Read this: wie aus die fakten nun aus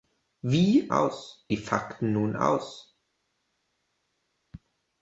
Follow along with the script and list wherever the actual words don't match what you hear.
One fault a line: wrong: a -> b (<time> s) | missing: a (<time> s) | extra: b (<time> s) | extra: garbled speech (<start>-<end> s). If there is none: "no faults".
no faults